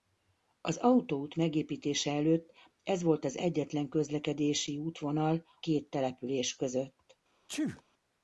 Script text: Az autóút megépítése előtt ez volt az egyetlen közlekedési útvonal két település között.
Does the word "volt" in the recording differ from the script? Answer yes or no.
no